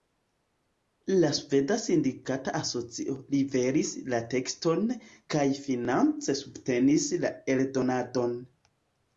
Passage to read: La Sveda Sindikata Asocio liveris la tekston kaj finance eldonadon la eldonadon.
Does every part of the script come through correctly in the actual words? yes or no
no